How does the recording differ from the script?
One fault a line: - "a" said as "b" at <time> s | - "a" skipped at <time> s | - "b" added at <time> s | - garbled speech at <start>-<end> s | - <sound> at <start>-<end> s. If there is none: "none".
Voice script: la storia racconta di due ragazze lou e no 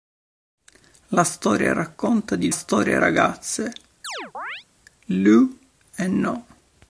- "due" said as "storia" at 2.5 s
- chirp at 4.0-4.6 s